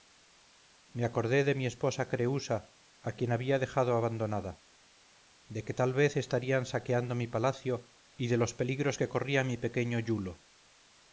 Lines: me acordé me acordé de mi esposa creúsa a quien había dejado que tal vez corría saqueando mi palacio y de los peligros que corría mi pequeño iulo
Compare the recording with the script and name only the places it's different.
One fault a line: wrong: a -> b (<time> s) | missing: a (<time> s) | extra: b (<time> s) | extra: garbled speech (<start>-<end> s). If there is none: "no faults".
missing: me acordé (1.4 s)
extra: abandonada de (4.0 s)
wrong: corría -> estarían (6.2 s)